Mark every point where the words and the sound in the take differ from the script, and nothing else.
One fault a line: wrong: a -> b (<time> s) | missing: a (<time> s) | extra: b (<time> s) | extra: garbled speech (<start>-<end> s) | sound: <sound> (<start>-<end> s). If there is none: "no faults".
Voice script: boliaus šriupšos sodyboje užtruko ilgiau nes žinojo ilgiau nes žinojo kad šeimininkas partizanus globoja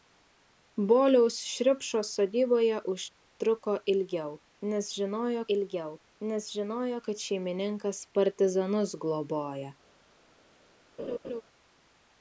sound: laugh (11.0-11.4 s)